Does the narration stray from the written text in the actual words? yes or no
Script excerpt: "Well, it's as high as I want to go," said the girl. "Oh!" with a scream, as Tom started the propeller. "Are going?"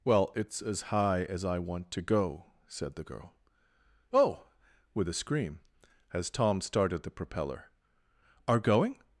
no